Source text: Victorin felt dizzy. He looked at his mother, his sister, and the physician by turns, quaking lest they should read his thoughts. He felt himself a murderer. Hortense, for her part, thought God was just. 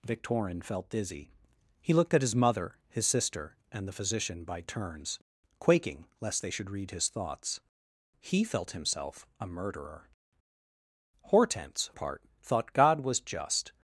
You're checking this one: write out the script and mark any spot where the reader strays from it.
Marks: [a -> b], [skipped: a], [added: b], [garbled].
Victorin felt dizzy. He looked at his mother, his sister, and the physician by turns, quaking lest they should read his thoughts. He felt himself a murderer. Hortense, [skipped: for her] part, thought God was just.